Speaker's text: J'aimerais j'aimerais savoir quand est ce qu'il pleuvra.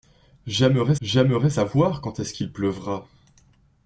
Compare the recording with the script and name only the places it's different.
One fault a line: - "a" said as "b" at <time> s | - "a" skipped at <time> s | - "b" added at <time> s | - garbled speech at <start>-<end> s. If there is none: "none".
none